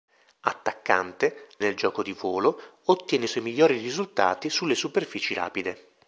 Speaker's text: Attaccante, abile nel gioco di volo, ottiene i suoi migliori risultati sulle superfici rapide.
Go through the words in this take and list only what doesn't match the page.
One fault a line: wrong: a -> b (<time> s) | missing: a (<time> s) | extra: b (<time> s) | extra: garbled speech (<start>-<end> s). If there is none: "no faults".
missing: abile (1.5 s)